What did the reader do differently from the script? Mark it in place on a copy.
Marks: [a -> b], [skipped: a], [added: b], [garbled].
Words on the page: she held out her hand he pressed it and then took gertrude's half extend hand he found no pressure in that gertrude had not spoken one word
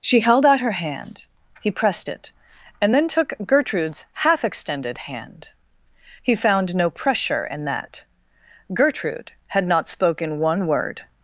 she held out her hand he pressed it and then took gertrude's half [extend -> extended] hand he found no pressure in that gertrude had not spoken one word